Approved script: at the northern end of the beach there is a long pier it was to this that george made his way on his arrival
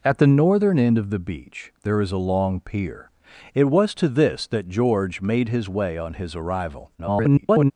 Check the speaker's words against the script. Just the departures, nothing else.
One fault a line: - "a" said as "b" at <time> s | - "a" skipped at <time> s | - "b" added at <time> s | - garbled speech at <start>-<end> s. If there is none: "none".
- garbled speech at 7.0-7.7 s